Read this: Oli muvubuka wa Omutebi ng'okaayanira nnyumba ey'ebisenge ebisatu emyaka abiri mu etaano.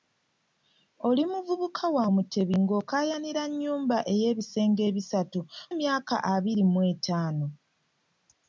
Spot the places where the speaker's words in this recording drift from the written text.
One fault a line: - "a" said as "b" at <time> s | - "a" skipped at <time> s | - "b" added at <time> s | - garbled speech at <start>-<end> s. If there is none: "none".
none